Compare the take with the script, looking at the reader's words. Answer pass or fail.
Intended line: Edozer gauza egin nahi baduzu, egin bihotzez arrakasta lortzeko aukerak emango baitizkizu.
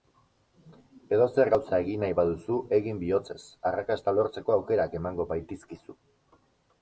pass